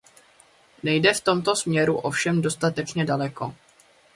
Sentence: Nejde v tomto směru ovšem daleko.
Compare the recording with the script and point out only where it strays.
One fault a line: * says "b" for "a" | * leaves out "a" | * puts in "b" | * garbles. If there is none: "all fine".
* puts in "dostatečně"